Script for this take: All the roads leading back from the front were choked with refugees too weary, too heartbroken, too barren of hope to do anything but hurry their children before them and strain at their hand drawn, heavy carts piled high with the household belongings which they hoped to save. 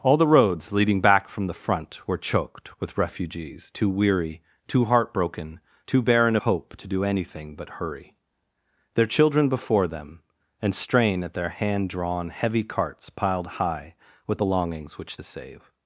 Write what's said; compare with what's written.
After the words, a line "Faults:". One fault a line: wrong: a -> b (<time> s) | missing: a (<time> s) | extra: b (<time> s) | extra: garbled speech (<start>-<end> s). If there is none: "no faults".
All the roads leading back from the front were choked with refugees too weary, too heartbroken, too barren hope to do anything but hurry their children before them and strain at their hand drawn, heavy carts piled high with belongings which to save.
Faults:
missing: of (6.4 s)
missing: the household (14.4 s)
missing: they hoped (15.2 s)